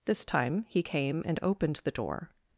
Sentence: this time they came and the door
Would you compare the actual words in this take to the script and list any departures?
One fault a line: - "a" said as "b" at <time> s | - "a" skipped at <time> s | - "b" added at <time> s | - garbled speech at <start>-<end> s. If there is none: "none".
- "they" said as "he" at 0.7 s
- "opened" added at 1.4 s